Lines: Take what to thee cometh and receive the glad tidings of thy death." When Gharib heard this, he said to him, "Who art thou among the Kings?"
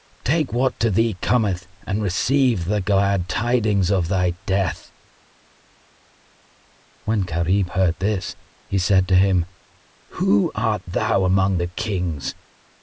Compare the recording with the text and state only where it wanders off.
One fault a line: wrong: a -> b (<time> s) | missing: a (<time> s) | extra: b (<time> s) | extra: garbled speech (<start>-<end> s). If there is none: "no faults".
no faults